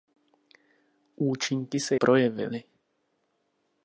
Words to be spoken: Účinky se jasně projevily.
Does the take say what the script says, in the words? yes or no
no